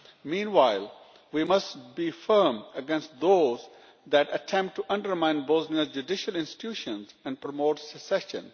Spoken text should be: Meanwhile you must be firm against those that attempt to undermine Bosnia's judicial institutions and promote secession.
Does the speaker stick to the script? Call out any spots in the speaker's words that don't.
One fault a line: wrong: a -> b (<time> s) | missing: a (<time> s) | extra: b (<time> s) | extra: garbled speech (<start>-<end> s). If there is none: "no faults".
wrong: you -> we (1.3 s)